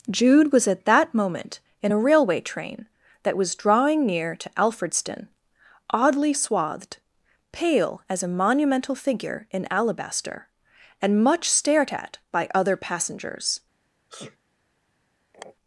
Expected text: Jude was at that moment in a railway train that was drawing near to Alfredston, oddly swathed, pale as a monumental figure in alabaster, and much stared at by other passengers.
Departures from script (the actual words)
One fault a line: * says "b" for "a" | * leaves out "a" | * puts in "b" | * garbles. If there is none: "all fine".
all fine